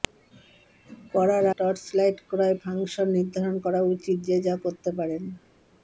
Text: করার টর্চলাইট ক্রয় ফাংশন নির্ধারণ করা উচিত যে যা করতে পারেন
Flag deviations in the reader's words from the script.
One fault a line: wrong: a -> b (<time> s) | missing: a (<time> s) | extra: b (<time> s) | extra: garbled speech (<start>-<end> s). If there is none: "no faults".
no faults